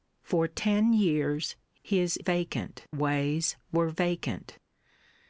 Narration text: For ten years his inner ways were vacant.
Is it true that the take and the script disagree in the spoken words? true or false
true